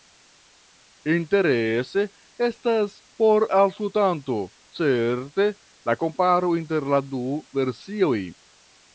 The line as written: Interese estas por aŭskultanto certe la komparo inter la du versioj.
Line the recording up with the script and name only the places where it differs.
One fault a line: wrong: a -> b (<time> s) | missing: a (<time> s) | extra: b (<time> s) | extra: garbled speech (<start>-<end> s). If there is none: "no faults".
no faults